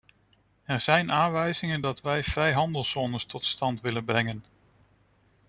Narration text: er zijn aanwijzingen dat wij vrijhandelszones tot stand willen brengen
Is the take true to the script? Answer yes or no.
yes